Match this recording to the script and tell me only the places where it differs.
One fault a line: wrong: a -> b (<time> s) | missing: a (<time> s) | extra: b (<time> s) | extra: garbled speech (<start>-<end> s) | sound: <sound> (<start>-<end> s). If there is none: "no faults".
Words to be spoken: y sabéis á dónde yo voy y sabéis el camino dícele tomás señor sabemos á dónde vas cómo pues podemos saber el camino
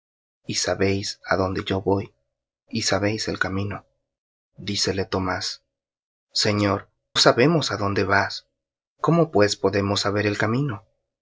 no faults